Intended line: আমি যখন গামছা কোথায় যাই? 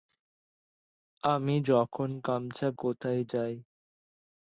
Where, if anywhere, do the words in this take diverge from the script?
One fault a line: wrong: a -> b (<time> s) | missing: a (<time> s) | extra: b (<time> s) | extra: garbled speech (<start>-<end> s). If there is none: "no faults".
no faults